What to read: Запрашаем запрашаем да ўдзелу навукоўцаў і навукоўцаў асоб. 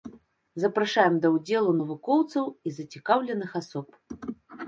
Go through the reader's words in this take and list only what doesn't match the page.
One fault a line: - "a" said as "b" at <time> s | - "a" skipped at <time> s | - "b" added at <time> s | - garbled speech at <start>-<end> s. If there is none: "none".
- "запрашаем" skipped at 1.2 s
- "навукоўцаў" said as "зацікаўленых" at 2.8 s